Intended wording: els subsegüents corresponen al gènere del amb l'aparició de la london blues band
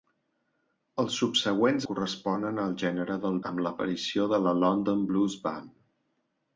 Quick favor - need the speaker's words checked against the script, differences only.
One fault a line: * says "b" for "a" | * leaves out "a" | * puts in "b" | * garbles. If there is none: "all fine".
all fine